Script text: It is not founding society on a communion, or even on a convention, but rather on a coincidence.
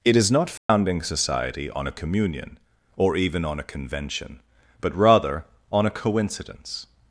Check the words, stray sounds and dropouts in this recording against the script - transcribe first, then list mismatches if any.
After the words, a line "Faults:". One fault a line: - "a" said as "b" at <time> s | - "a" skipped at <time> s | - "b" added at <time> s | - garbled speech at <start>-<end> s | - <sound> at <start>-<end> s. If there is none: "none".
It is not founding society on a communion, or even on a convention, but rather on a coincidence.
Faults:
- dropout at 0.6-0.7 s